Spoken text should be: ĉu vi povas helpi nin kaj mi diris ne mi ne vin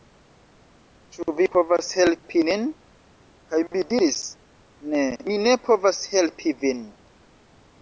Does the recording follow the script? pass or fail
fail